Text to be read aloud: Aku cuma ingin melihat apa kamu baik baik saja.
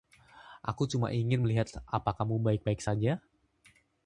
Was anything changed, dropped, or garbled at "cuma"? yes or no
no